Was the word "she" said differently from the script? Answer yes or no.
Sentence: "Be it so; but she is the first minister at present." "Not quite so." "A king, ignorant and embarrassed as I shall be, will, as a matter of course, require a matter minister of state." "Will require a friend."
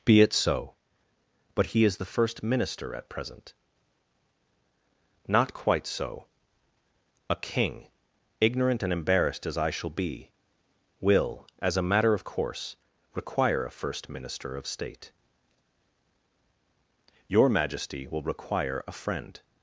yes